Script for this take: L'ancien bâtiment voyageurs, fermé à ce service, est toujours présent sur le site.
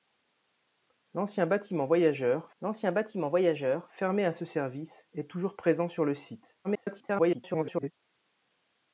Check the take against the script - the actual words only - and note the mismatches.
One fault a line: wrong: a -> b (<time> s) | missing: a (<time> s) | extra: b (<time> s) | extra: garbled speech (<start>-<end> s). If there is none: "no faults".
extra: l'ancien bâtiment voyageurs (2.6 s)
extra: garbled speech (6.6-7.9 s)